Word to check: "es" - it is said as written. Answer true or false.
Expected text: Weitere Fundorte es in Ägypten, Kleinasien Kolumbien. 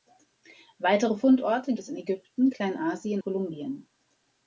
true